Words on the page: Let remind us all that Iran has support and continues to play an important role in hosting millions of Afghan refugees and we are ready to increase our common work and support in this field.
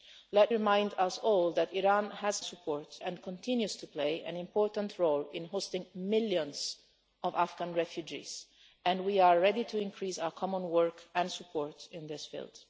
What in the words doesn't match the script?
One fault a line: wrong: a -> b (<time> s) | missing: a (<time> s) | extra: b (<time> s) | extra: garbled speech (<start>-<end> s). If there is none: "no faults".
no faults